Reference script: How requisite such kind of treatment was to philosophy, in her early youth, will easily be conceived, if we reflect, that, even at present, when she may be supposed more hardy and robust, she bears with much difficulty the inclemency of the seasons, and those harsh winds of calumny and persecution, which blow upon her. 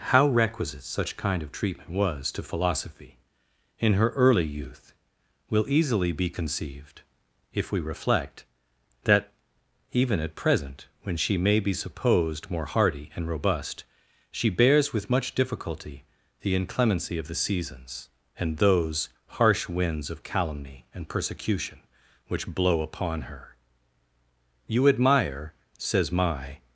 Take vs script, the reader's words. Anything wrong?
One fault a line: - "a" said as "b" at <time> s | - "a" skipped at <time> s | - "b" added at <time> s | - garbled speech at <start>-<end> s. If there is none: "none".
- "You admire says my" added at 24.7 s